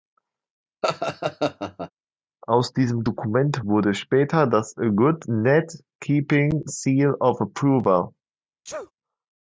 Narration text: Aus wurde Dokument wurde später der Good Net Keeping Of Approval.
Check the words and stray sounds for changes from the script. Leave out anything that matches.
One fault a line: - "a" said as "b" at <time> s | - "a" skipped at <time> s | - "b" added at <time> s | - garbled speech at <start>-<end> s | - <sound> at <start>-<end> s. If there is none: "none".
- laugh at 0.8-1.9 s
- "wurde" said as "diesem" at 2.7 s
- "der" said as "das" at 4.5 s
- "Seal" added at 6.6 s
- sneeze at 8.6-8.9 s